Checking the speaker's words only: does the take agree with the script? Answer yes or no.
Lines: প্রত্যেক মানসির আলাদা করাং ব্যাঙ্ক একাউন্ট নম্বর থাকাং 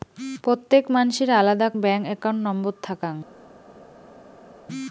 no